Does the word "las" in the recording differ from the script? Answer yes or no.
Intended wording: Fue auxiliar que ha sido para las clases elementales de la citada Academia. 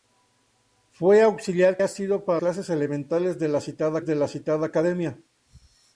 yes